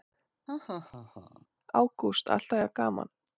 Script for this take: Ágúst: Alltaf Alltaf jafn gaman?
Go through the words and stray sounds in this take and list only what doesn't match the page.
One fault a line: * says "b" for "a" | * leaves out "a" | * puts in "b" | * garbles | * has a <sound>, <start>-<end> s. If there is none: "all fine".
* has a laugh, 0.5-1.5 s
* leaves out "Alltaf"